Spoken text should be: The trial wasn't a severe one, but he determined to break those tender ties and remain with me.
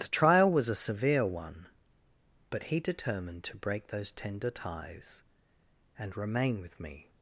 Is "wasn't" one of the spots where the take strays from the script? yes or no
yes